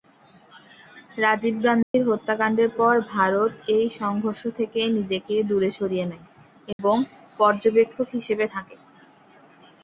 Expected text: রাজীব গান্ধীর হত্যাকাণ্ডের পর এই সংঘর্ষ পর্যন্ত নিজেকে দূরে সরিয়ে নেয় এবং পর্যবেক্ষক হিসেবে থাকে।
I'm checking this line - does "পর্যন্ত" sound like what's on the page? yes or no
no